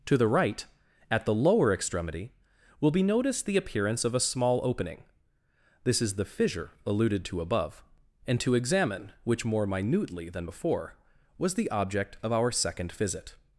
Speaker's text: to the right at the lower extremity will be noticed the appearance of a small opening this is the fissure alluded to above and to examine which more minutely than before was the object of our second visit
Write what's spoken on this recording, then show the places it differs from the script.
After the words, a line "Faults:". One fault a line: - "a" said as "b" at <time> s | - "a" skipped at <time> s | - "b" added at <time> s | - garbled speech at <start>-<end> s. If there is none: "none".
to the right at the lower extremity will be noticed the appearance of a small opening this is the fissure alluded to above and to examine which more minutely than before was the object of our second visit
Faults:
none